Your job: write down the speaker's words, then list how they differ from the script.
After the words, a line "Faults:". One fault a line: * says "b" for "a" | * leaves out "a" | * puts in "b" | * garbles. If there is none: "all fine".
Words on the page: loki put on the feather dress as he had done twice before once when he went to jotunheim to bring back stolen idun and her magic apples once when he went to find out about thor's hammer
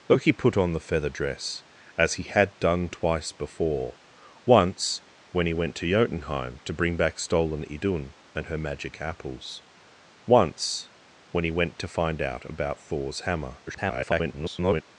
loki put on the feather dress as he had done twice before once when he went to jotunheim to bring back stolen idun and her magic apples once when he went to find out about thor's hammer [garbled]
Faults:
* garbles